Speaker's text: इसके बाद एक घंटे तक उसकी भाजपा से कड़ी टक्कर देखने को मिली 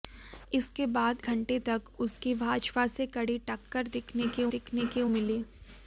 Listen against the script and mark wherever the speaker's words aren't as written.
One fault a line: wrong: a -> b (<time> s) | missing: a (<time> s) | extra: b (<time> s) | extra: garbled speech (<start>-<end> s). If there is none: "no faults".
missing: एक (1.2 s)
extra: देखने को (4.5 s)